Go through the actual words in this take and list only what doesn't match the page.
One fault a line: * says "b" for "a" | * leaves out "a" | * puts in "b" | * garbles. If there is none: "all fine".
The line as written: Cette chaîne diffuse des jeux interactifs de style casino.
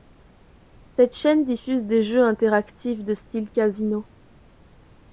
all fine